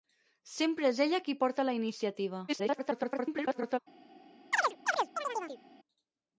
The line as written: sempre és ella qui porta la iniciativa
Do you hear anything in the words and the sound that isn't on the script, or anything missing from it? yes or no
yes